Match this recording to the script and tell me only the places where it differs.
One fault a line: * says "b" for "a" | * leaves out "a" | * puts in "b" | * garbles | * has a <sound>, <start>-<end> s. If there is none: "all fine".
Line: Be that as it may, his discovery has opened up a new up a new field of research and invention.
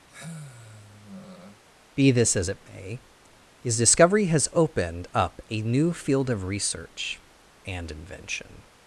* has a sigh, 0.1-1.6 s
* says "this" for "that"
* leaves out "up a new"